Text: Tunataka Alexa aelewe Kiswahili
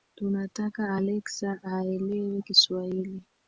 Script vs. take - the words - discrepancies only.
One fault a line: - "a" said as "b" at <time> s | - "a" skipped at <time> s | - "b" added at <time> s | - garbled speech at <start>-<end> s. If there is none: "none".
none